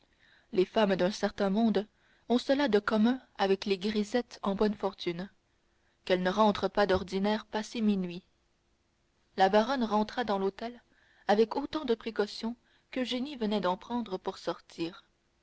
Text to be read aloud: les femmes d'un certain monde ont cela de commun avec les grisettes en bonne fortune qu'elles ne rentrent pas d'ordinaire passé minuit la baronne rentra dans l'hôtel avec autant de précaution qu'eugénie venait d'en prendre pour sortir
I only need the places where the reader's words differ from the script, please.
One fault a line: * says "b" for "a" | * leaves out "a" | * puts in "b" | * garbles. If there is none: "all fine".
all fine